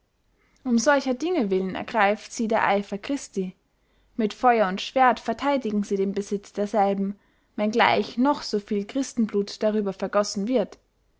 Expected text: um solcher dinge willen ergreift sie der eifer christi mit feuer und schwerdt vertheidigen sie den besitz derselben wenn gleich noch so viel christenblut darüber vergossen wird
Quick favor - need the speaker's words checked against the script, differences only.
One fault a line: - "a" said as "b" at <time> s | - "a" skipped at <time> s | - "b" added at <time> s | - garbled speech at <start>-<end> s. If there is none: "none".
none